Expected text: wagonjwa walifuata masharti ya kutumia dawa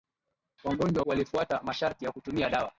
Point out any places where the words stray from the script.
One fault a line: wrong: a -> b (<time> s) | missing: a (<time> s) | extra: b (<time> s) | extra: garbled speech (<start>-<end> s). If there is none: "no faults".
no faults